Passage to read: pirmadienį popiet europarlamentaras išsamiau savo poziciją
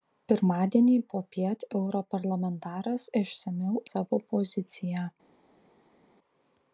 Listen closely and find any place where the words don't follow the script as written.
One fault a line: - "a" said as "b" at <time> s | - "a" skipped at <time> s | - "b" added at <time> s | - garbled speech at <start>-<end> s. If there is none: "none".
none